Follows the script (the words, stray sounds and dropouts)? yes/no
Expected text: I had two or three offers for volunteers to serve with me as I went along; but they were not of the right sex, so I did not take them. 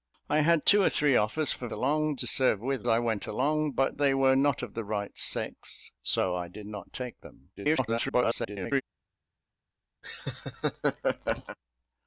no